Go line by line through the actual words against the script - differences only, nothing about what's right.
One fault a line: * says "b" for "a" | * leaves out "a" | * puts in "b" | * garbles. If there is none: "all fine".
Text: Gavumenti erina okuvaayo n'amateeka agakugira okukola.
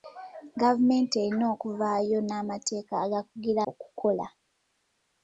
all fine